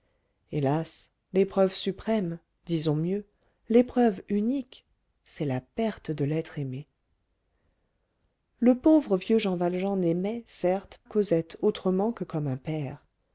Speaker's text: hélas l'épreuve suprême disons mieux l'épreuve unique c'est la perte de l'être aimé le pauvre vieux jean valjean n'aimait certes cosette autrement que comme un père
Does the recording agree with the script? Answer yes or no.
yes